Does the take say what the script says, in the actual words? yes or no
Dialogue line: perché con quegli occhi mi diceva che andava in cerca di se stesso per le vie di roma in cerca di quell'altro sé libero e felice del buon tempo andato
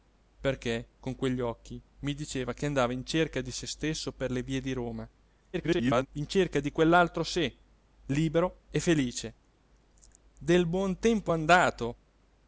no